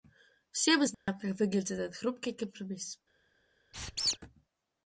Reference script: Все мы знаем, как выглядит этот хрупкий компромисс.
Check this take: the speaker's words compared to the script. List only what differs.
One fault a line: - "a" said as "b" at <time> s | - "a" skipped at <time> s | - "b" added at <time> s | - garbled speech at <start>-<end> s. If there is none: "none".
none